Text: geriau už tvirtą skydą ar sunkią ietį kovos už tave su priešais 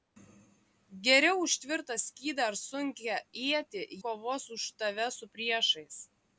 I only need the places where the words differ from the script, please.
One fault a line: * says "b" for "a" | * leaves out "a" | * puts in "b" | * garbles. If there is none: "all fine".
all fine